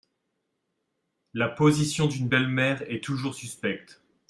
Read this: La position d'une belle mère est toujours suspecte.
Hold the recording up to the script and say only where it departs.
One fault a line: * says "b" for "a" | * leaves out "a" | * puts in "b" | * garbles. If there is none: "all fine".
all fine